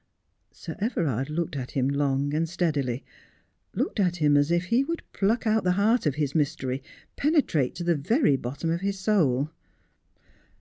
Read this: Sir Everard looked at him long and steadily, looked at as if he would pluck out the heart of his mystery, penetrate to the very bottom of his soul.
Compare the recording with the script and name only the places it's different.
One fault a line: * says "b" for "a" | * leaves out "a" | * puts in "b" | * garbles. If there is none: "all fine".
* puts in "him"